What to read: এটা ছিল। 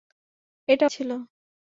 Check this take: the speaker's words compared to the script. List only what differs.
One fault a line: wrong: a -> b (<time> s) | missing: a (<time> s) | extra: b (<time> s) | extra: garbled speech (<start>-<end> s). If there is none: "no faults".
no faults